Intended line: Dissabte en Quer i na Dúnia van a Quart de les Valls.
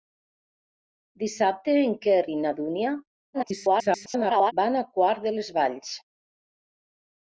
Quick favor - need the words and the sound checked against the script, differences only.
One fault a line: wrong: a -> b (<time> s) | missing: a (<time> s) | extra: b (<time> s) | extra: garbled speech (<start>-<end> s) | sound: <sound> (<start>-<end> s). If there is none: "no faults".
extra: garbled speech (3.3-4.5 s)